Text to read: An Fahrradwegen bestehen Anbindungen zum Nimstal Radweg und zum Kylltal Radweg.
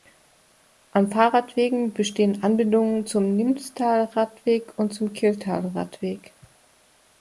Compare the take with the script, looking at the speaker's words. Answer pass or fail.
pass